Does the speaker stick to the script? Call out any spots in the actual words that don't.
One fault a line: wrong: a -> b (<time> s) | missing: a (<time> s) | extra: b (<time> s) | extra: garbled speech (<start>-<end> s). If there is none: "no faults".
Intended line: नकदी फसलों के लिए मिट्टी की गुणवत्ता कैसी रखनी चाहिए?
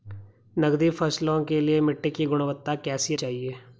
missing: रखनी (3.1 s)